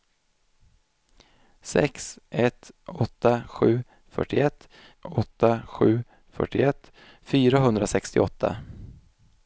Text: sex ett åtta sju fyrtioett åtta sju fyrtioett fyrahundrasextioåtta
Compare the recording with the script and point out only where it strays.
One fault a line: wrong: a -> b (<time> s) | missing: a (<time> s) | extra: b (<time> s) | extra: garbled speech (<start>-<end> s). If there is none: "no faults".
no faults